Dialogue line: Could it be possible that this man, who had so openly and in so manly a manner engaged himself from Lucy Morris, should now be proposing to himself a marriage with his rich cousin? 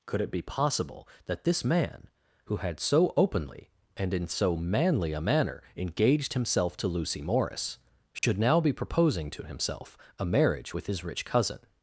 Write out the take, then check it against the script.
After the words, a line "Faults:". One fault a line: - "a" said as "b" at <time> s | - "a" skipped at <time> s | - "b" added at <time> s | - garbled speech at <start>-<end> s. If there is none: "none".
Could it be possible that this man, who had so openly and in so manly a manner engaged himself to Lucy Morris, should now be proposing to himself a marriage with his rich cousin?
Faults:
- "from" said as "to" at 6.8 s